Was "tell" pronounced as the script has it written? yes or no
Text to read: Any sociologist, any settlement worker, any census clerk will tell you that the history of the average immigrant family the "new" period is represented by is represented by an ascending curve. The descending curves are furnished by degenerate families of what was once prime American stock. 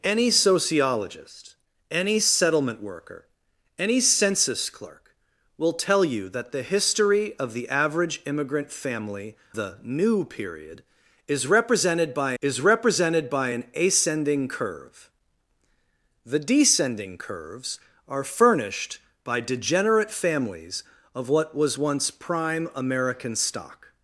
yes